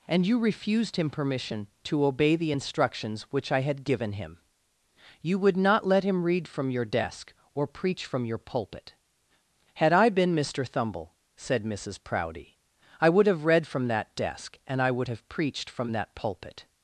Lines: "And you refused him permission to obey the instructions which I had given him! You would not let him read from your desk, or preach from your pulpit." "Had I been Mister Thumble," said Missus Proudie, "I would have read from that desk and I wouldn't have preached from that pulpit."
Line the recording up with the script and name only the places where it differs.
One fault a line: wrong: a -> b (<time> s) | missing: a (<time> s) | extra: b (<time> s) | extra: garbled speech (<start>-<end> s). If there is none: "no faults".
wrong: wouldn't -> would (14.9 s)